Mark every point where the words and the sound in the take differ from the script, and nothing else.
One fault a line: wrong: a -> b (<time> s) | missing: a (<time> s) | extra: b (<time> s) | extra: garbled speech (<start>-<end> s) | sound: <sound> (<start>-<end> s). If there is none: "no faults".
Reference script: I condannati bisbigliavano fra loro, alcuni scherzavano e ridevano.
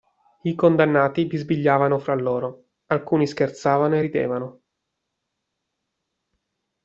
no faults